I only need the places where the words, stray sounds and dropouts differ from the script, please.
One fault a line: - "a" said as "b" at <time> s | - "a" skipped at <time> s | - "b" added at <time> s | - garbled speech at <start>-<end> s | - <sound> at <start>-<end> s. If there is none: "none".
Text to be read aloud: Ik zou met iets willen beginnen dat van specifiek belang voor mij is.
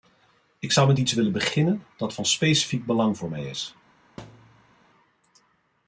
- thud at 4.2-4.7 s